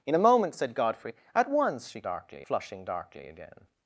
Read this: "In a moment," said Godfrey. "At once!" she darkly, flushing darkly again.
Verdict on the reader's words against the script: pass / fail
pass